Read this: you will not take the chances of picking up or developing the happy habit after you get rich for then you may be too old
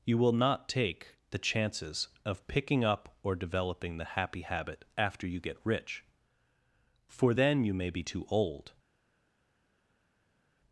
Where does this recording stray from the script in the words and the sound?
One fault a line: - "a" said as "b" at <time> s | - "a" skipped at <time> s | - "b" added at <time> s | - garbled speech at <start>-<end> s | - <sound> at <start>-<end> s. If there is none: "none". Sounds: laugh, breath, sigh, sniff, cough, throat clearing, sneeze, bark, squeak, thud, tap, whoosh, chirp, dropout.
none